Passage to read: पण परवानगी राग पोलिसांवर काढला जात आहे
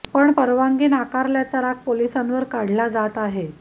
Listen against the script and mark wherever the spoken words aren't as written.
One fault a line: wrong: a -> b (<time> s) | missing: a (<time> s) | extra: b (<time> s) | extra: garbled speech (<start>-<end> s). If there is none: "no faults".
extra: नाकारल्याचा (0.9 s)